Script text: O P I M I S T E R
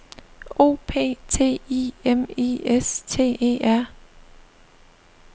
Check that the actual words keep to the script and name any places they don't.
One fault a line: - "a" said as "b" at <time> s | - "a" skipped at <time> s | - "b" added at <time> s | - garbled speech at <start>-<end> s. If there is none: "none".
- "T" added at 1.3 s